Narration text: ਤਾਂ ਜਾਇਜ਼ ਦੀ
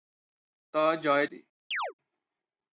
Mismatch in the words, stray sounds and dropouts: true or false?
true